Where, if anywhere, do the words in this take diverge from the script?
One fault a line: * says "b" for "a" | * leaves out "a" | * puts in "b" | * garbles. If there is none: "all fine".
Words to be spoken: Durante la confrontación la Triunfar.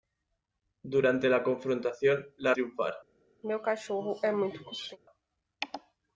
all fine